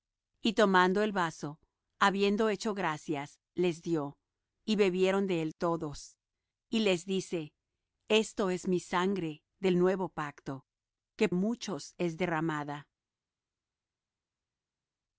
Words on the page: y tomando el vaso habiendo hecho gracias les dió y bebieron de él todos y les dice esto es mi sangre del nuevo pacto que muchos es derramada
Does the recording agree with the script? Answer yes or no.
yes